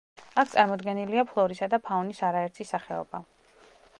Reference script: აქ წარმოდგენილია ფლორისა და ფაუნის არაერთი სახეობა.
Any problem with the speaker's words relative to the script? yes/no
no